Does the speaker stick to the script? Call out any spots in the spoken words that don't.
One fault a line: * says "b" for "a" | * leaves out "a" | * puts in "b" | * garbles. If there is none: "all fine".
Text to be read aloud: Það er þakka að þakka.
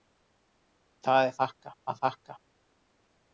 all fine